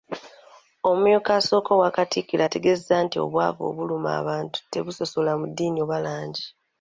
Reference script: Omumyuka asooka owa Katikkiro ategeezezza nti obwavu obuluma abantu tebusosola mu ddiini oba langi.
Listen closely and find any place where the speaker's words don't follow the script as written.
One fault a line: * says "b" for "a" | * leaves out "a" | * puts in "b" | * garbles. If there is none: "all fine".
all fine